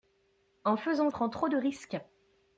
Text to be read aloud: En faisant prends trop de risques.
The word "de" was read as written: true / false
true